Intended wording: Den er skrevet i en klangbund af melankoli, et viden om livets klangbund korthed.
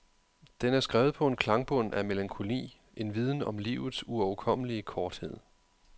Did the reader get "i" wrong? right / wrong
wrong